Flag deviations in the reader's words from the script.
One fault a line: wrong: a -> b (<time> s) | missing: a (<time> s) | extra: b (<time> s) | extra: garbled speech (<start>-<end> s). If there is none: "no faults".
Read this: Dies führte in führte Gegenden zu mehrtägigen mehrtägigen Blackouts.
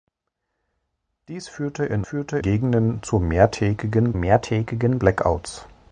no faults